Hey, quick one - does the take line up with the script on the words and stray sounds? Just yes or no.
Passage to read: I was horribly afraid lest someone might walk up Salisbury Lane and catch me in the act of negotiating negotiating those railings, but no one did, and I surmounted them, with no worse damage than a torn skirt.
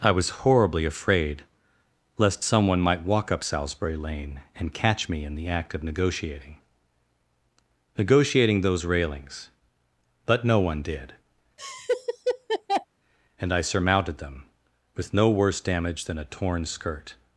no